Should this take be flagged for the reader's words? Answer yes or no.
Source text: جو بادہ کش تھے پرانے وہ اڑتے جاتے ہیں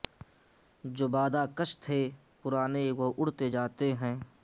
no